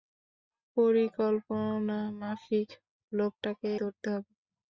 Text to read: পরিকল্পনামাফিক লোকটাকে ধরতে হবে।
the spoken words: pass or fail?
pass